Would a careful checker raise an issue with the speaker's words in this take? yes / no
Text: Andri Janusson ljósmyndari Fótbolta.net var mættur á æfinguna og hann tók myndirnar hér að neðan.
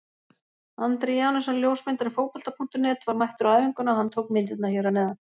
no